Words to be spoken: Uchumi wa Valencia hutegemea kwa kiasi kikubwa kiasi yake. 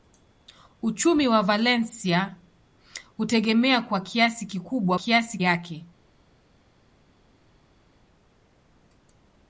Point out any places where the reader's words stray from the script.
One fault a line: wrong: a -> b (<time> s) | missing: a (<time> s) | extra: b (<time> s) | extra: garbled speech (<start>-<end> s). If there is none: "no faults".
no faults